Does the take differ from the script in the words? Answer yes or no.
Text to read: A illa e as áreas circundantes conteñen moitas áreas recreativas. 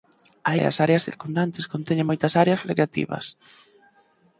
yes